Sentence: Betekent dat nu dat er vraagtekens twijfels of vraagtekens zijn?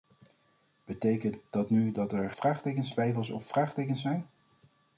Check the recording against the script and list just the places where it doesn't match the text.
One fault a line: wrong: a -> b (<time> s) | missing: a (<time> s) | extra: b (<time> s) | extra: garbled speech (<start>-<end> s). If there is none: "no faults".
no faults